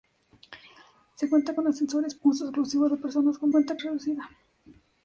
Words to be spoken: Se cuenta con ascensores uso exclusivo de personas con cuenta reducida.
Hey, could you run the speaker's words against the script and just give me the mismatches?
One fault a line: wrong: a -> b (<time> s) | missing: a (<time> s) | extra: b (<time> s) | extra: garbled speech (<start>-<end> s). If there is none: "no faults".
no faults